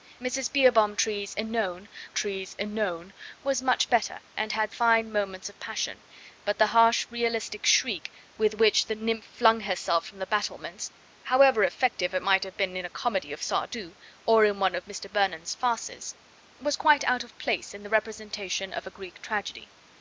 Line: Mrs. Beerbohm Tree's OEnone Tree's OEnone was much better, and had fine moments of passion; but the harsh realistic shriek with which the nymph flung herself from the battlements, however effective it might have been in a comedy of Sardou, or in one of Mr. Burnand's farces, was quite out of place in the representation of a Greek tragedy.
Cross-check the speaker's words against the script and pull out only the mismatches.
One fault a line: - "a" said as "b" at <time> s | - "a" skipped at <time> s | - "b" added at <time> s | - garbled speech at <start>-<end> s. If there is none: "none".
none